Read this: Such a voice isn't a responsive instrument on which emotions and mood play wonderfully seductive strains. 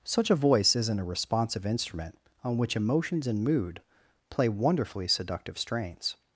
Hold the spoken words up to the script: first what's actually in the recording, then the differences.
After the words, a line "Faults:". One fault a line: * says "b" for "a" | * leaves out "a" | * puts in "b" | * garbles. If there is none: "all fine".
Such a voice isn't a responsive instrument on which emotions and mood play wonderfully seductive strains.
Faults:
all fine